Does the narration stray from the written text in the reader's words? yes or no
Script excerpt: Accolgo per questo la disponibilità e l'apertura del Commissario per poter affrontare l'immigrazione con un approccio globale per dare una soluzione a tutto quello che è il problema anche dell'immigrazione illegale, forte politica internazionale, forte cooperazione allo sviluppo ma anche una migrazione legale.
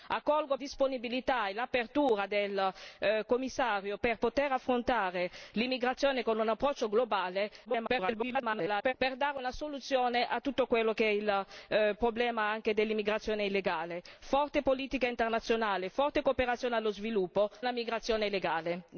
yes